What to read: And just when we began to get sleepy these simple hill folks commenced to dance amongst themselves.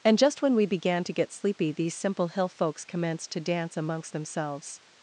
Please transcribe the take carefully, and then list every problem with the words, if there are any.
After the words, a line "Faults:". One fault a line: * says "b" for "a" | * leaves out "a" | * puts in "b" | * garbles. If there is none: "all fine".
And just when we began to get sleepy these simple hill folks commenced to dance amongst themselves.
Faults:
all fine